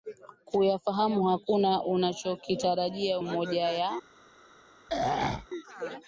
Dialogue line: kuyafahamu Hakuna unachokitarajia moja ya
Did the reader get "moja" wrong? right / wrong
right